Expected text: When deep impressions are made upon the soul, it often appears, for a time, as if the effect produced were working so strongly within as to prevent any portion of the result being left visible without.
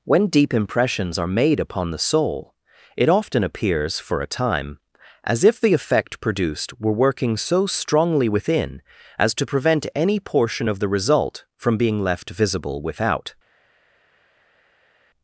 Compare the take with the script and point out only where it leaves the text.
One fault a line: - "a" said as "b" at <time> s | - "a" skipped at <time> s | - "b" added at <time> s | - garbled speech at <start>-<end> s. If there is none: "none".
- "from" added at 11.6 s